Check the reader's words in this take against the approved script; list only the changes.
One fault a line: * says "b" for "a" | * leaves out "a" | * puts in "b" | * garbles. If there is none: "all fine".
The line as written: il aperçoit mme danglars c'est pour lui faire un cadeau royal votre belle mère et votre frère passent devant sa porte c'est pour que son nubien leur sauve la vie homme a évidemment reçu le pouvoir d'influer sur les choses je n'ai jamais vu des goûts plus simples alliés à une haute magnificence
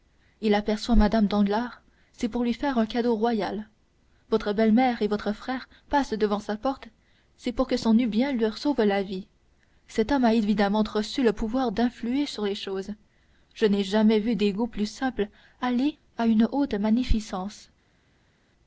* puts in "cet"